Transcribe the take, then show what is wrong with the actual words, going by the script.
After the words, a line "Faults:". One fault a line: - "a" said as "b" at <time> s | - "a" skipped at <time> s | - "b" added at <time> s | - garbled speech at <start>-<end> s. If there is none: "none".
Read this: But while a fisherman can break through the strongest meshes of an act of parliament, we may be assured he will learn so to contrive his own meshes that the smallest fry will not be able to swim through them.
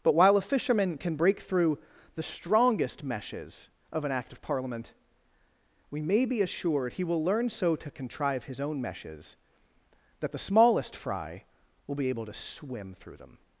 But while a fisherman can break through the strongest meshes of an act of parliament, we may be assured he will learn so to contrive his own meshes that the smallest fry will be able to swim through them.
Faults:
- "not" skipped at 11.9 s